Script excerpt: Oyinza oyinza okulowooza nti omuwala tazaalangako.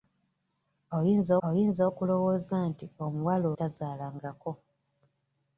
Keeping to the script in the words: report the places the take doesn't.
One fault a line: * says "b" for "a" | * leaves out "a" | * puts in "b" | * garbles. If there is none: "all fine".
all fine